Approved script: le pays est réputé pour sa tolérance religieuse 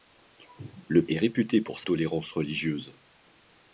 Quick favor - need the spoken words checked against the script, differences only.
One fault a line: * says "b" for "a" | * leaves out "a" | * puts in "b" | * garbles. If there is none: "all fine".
* leaves out "pays"
* leaves out "sa"